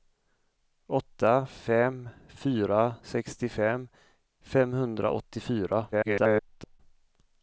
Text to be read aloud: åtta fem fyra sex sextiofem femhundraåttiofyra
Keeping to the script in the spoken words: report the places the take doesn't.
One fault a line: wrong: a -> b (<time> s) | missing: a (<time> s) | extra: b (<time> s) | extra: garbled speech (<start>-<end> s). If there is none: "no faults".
missing: sex (3.0 s)
extra: garbled speech (5.9-6.8 s)